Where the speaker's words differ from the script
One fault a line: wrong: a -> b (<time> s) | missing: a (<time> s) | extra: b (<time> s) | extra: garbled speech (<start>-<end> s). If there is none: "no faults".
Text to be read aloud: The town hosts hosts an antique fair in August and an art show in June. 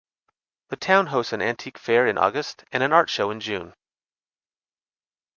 missing: hosts (1.3 s)